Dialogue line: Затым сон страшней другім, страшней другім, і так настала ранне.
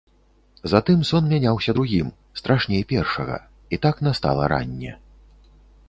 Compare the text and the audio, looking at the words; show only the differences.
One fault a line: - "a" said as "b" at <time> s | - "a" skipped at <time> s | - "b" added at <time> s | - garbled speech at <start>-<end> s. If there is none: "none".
- "страшней" said as "мяняўся" at 1.3 s
- "другім" said as "першага" at 2.9 s